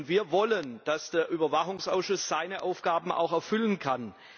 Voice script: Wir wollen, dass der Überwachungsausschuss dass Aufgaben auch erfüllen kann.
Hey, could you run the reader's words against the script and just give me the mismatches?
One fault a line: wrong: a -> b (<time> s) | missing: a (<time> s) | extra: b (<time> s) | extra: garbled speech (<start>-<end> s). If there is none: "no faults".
wrong: dass -> seine (2.3 s)